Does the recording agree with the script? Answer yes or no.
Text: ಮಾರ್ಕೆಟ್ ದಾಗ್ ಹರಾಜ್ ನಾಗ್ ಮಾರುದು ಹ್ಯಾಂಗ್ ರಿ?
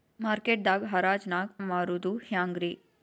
yes